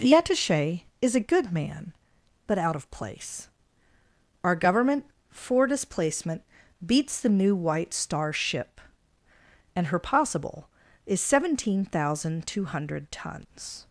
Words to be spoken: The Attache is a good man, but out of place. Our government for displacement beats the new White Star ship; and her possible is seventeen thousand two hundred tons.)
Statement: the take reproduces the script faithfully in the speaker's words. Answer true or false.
true